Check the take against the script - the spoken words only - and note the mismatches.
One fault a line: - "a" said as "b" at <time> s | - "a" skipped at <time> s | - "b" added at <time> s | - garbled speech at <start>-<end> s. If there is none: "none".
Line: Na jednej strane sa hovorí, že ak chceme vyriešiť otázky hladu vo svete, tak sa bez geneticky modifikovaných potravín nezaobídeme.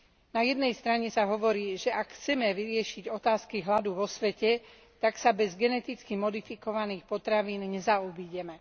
none